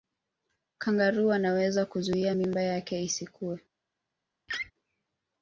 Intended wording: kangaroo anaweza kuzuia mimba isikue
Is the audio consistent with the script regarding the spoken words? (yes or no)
no